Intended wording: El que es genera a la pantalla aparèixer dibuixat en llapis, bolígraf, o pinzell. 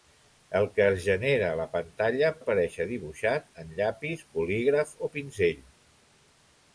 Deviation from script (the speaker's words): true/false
false